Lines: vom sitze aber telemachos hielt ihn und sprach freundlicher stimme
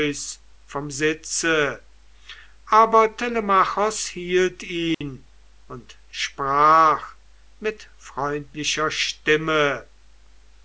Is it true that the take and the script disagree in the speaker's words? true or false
true